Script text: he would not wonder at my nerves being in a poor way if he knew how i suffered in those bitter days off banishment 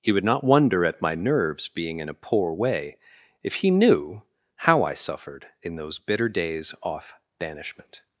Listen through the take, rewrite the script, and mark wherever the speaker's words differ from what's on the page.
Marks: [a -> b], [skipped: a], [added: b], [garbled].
he would not wonder at my nerves being in a poor way if he knew how i suffered in those bitter days off banishment